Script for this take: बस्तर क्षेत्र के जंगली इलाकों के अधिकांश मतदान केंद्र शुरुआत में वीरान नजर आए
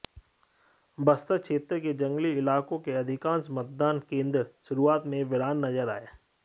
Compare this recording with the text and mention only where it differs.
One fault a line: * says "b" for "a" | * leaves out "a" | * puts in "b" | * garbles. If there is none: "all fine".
all fine